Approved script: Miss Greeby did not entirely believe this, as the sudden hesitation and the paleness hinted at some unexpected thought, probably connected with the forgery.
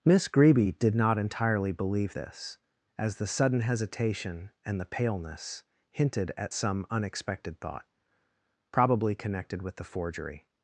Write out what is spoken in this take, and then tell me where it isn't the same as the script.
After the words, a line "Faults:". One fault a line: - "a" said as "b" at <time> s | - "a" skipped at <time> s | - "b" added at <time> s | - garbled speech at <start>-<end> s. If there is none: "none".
Miss Greeby did not entirely believe this, as the sudden hesitation and the paleness hinted at some unexpected thought, probably connected with the forgery.
Faults:
none